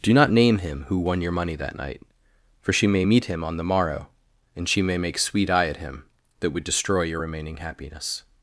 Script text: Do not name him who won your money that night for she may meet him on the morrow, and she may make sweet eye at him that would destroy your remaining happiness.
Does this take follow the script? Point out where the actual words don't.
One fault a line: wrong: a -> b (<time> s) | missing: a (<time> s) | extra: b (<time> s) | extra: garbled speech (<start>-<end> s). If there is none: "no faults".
no faults